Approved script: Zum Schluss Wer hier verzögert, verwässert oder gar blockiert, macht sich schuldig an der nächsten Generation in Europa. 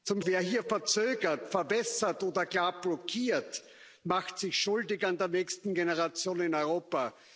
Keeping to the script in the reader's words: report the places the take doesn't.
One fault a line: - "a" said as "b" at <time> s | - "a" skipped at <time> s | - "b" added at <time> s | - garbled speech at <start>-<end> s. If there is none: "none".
- "Schluss" skipped at 0.2 s